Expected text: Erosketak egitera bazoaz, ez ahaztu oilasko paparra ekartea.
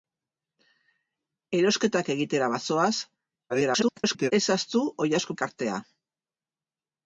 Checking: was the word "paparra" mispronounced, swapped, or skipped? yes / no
yes